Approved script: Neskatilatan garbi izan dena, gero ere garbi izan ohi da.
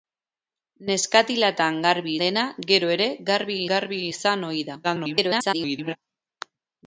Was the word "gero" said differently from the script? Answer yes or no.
no